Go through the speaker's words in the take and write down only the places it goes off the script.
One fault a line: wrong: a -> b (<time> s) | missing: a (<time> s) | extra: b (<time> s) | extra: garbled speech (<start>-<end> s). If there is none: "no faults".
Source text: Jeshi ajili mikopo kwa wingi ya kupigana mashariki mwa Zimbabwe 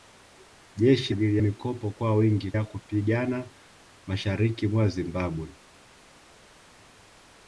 no faults